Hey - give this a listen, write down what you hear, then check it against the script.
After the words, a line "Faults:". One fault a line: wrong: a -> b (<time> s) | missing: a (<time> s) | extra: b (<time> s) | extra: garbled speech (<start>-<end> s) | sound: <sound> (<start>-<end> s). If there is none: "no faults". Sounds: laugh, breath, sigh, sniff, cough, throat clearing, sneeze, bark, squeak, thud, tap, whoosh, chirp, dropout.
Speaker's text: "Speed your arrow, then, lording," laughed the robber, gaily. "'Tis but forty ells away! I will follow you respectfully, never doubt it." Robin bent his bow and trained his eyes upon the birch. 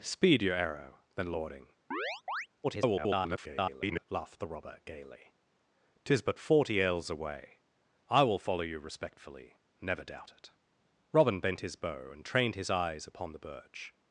"Speed your arrow, then, lording," [garbled] laughed the robber, gaily. "'Tis but forty ells away! I will follow you respectfully, never doubt it." Robin bent his bow and trained his eyes upon the birch.
Faults:
sound: chirp (1.9-2.5 s)
extra: garbled speech (2.6-4.1 s)